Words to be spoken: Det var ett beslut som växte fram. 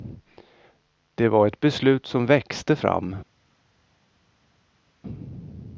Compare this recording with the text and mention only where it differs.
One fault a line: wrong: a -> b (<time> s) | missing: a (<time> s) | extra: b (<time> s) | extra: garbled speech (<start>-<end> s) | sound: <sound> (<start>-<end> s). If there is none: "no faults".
no faults